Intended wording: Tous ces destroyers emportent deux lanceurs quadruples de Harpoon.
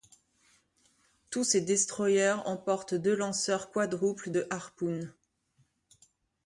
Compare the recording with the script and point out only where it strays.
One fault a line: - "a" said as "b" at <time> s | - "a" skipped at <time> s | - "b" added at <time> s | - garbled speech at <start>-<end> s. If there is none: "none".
none